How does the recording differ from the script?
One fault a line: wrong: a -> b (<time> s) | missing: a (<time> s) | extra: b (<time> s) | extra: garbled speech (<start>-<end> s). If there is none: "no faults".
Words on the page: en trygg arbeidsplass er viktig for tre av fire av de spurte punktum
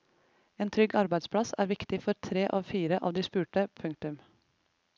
no faults